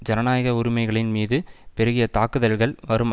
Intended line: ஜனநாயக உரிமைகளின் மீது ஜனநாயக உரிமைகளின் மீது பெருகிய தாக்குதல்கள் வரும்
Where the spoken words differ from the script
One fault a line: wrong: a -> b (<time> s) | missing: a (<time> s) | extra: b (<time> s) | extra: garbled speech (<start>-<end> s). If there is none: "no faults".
missing: ஜனநாயக உரிமைகளின் மீது (1.4 s)